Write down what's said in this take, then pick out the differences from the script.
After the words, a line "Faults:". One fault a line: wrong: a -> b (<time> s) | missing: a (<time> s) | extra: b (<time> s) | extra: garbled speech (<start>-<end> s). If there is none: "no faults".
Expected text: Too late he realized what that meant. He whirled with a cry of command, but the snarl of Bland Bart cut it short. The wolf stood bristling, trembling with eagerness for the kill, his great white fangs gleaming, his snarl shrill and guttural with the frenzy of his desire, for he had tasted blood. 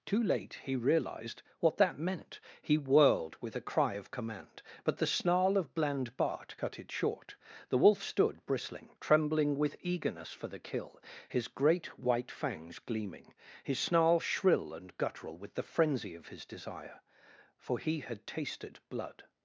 Too late he realized what that meant. He whirled with a cry of command, but the snarl of Bland Bart cut it short. The wolf stood bristling, trembling with eagerness for the kill, his great white fangs gleaming, his snarl shrill and guttural with the frenzy of his desire, for he had tasted blood.
Faults:
no faults